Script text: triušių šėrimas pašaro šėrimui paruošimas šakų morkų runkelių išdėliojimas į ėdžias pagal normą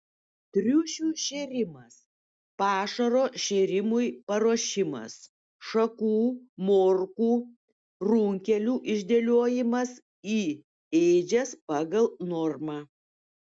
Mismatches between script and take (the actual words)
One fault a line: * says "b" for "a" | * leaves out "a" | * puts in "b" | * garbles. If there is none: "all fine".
all fine